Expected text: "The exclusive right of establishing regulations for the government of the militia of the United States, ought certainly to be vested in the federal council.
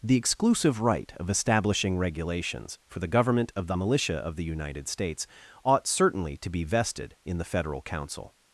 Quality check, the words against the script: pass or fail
pass